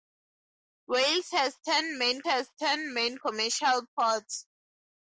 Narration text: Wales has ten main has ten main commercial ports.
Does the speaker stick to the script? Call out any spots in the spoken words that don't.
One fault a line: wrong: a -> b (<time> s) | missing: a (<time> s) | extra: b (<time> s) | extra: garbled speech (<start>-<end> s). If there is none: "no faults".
no faults